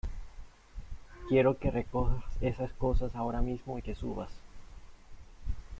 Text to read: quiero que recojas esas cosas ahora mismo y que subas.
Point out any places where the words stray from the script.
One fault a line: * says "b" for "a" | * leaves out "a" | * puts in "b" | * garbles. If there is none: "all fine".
all fine